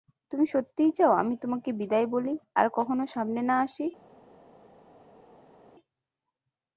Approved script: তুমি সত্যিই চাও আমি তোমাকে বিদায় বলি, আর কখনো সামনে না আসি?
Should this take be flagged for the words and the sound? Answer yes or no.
no